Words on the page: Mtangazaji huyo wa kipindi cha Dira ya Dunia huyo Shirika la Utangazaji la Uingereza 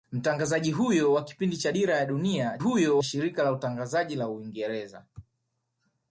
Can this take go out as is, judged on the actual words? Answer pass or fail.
pass